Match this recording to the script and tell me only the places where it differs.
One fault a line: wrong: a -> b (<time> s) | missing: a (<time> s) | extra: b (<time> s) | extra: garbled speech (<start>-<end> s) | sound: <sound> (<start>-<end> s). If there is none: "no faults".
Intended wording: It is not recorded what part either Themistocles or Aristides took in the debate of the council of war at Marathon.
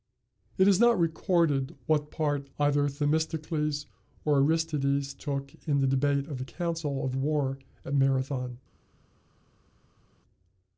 no faults